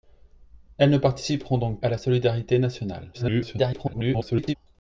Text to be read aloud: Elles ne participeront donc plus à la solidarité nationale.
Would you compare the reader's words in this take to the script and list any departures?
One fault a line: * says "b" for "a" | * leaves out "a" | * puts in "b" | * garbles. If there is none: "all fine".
* leaves out "plus"
* garbles